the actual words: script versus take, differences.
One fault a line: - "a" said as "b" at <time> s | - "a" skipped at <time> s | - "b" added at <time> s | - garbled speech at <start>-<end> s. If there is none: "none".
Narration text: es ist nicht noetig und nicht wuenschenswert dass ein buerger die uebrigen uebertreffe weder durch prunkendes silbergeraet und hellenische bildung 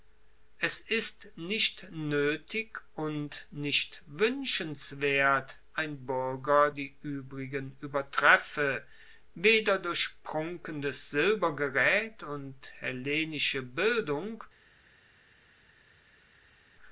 - "dass" skipped at 5.6 s